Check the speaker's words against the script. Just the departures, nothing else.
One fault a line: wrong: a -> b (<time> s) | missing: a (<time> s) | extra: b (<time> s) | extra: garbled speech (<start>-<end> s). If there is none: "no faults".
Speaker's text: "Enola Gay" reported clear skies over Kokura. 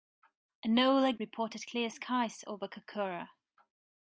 missing: Gay (1.1 s)